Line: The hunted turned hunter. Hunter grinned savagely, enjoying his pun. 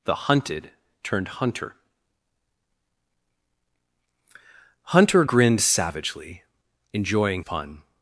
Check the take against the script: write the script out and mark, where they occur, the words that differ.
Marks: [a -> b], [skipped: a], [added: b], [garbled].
The hunted turned hunter. Hunter grinned savagely, enjoying [skipped: his] pun.